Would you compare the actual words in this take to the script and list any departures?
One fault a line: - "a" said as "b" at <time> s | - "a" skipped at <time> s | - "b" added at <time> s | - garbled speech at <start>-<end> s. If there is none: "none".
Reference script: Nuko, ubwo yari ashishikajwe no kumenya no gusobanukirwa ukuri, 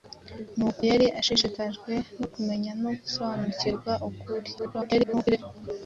- "ubwo" skipped at 0.8 s
- garbled speech at 4.6-5.4 s